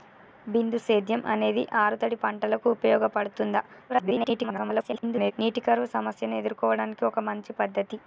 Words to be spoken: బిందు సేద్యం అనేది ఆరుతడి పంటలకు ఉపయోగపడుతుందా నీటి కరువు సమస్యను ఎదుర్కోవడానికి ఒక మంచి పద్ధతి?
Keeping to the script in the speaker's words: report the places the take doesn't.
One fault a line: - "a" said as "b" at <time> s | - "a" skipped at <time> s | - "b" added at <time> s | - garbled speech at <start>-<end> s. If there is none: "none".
- garbled speech at 3.9-5.3 s